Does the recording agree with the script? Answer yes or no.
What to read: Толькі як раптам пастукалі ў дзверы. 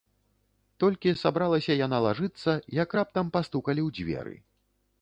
no